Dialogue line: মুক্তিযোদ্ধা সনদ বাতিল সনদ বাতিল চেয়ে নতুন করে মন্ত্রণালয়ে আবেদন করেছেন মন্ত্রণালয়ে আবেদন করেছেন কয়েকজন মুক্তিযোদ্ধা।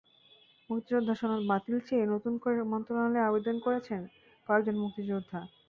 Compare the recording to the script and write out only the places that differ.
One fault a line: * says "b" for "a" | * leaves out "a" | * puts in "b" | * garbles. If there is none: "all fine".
* leaves out "সনদ বাতিল"
* leaves out "মন্ত্রণালয়ে আবেদন করেছেন"